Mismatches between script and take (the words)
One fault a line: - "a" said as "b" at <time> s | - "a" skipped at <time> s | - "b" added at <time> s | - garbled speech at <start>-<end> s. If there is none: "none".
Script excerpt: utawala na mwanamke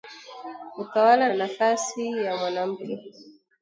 - "nafasi ya" added at 1.3 s